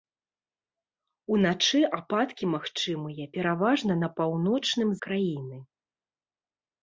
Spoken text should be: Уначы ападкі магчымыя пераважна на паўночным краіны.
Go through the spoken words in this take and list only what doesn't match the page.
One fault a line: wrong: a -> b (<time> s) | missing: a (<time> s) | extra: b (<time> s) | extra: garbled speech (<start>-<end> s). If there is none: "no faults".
no faults